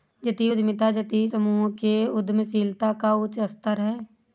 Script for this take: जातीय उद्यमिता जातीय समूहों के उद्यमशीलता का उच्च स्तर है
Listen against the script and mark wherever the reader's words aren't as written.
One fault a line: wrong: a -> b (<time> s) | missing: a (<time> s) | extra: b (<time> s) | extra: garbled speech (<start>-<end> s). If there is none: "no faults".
no faults